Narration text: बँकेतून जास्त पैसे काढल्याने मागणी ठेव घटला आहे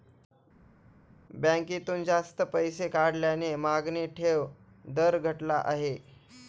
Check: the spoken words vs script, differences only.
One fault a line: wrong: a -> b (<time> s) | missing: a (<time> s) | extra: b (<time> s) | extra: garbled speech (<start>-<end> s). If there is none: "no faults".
extra: दर (4.9 s)